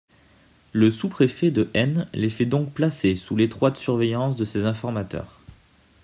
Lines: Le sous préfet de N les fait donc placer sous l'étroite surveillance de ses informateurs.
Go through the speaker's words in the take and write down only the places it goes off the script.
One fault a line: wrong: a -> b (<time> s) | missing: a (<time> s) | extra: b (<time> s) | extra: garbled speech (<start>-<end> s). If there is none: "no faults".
no faults